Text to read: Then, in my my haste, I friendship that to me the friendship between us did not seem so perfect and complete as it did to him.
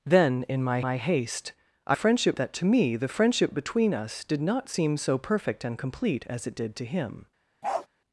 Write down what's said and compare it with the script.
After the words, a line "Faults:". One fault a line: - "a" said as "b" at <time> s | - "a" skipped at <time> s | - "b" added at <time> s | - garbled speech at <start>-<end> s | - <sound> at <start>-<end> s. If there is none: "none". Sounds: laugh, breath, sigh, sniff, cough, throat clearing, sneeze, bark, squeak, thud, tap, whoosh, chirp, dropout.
Then, in my my haste, I friendship that to me the friendship between us did not seem so perfect and complete as it did to him.
Faults:
- bark at 7.6-7.9 s